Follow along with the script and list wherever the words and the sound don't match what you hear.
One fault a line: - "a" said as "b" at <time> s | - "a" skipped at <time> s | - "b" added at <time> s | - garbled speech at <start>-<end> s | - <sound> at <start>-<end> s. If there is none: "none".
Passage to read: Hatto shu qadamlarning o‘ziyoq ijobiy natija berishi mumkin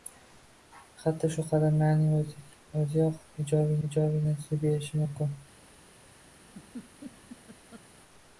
- "ijobiy" added at 3.9 s
- laugh at 6.4-7.9 s